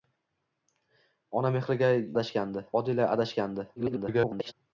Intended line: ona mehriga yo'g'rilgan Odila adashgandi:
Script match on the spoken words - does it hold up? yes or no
no